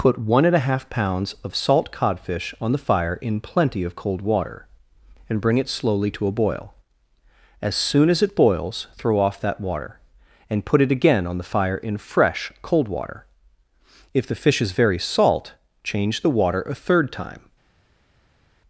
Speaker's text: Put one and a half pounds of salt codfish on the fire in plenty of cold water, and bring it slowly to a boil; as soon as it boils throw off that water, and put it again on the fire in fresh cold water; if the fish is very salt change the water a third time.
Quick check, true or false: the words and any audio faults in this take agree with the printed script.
true